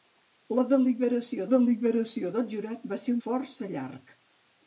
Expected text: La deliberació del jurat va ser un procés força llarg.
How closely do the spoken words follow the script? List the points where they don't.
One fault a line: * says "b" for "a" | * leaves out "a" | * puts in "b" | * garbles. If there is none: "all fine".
* puts in "deliberació"
* leaves out "un procés"